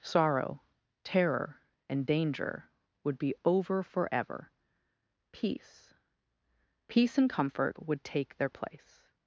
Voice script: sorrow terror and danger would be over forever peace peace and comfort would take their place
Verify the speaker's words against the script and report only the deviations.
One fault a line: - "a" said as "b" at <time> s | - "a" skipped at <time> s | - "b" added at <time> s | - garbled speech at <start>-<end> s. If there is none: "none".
none